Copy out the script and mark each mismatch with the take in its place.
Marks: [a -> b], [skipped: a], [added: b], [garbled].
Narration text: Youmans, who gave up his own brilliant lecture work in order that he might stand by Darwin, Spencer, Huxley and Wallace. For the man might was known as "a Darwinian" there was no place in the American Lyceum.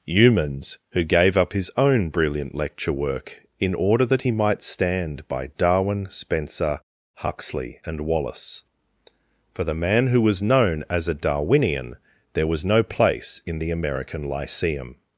Youmans, who gave up his own brilliant lecture work in order that he might stand by Darwin, Spencer, Huxley and Wallace. For the man [might -> who] was known as "a Darwinian" there was no place in the American Lyceum.